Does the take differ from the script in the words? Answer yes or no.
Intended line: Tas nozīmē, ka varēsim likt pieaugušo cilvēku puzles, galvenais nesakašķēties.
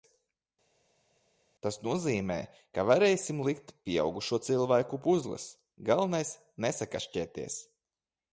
no